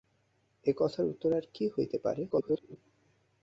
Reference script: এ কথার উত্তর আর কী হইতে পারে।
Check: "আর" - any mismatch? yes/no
no